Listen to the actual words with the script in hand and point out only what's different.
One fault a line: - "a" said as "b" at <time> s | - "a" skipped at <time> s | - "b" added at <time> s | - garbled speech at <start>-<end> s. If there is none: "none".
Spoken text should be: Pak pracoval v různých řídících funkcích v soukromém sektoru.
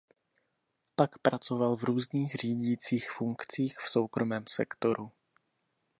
none